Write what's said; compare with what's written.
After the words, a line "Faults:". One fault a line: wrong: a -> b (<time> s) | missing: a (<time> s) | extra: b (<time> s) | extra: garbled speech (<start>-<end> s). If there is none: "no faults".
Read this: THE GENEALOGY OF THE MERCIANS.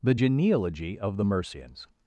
THE GENEALOGY OF THE MERCIANS.
Faults:
no faults